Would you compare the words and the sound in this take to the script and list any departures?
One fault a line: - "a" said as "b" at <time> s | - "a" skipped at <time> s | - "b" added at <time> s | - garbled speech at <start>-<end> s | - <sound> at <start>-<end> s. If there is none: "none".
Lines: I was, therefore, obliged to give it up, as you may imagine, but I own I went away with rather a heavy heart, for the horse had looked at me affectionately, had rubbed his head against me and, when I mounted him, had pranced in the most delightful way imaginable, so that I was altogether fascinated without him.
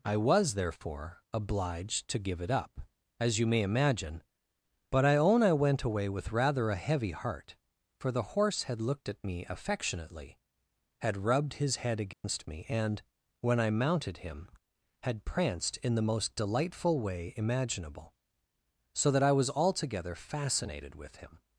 - dropout at 12.1-12.2 s
- "without" said as "with" at 21.0 s